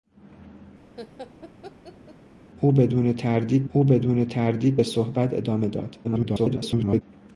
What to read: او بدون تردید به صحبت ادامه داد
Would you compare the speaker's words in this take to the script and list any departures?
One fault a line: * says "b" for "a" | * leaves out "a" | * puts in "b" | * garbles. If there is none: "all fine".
* puts in "او بدون تردید"
* garbles